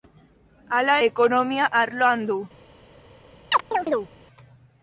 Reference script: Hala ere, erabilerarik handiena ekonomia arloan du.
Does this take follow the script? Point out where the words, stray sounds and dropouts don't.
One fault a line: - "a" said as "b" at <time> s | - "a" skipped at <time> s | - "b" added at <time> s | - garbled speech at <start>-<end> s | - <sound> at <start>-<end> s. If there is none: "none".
- "ere erabilerarik handiena" skipped at 0.9 s
- chirp at 3.5-4.1 s